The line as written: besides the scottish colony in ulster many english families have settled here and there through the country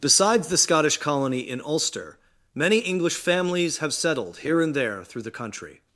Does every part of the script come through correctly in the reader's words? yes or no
yes